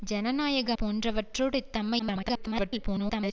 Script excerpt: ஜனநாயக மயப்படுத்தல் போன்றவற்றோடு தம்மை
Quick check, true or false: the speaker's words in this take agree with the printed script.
false